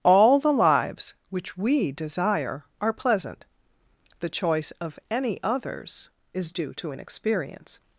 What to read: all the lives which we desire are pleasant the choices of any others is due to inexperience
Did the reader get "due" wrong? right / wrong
right